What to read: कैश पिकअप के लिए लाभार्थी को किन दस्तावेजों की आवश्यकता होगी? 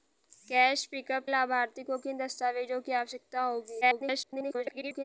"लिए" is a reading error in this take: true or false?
true